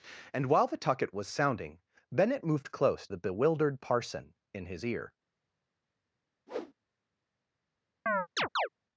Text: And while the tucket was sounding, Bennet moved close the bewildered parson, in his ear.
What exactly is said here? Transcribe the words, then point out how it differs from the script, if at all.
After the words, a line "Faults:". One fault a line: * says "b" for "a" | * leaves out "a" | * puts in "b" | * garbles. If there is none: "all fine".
And while the tucket was sounding, Bennet moved close the bewildered parson, in his ear.
Faults:
all fine